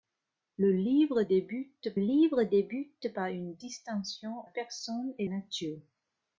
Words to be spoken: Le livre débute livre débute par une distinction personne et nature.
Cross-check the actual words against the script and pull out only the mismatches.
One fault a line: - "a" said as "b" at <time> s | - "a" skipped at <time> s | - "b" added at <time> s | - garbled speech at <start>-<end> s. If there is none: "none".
none